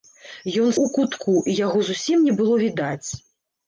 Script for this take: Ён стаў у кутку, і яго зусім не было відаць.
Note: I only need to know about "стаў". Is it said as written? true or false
false